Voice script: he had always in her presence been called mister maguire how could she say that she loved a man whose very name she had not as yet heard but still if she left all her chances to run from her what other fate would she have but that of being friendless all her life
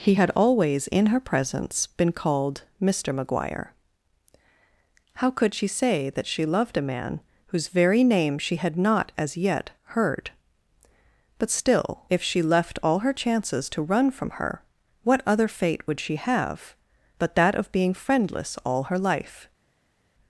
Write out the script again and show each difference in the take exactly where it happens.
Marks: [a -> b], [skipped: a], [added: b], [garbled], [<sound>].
he had always in her presence been called mister maguire how could she say that she loved a man whose very name she had not as yet heard but still if she left all her chances to run from her what other fate would she have but that of being friendless all her life